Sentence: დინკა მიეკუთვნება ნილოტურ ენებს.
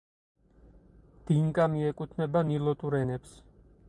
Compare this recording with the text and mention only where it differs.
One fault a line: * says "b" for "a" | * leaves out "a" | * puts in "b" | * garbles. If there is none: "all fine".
all fine